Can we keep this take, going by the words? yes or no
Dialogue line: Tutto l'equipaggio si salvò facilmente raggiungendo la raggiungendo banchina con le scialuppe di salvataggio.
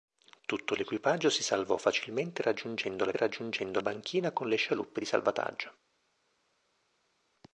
yes